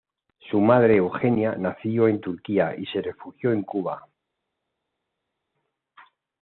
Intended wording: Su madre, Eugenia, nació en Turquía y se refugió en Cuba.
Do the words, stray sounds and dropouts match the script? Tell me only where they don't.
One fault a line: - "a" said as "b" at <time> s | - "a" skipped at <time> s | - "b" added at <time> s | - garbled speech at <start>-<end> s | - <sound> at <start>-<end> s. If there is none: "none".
none